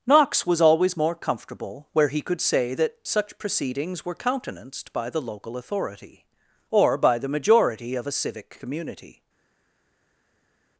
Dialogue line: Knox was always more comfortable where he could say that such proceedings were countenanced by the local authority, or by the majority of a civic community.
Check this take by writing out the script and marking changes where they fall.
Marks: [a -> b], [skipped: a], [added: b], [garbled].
Knox was always more comfortable where he could say that such proceedings were countenanced by the local authority, or by the majority of a civic community.